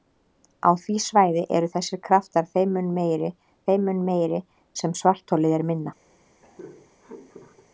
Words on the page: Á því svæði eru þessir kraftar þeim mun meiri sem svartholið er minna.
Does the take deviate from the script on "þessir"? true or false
false